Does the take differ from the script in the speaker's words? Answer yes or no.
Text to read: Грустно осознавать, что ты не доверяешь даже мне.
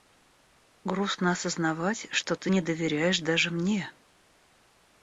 no